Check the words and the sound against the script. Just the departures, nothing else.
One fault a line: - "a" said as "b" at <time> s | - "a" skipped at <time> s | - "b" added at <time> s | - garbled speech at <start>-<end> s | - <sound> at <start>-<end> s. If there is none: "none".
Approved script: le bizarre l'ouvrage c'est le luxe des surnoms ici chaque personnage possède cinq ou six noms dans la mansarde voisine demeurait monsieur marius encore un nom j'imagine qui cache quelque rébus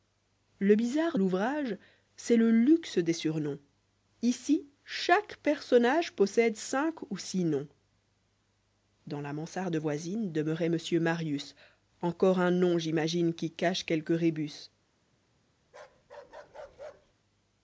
- bark at 15.7-17.1 s